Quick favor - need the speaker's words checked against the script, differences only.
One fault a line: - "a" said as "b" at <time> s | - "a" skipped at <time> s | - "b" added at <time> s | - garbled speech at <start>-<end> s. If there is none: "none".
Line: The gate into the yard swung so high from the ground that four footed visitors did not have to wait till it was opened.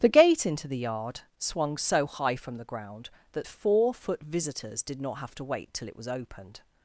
- "footed" said as "foot" at 3.9 s